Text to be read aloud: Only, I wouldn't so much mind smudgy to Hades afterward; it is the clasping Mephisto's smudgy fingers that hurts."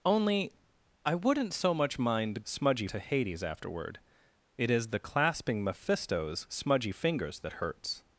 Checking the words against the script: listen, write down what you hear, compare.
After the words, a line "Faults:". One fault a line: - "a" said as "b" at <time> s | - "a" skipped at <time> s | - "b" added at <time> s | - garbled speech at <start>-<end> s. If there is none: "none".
Only, I wouldn't so much mind smudgy to Hades afterward; it is the clasping Mephisto's smudgy fingers that hurts."
Faults:
none